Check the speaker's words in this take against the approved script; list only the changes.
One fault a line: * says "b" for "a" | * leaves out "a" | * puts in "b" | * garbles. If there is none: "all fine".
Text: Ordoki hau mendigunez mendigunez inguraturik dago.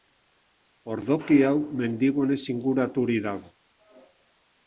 * leaves out "mendigunez"